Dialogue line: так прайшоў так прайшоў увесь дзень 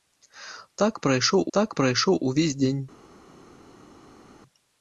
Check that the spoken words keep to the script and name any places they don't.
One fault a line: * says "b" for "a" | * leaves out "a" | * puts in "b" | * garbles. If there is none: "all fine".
all fine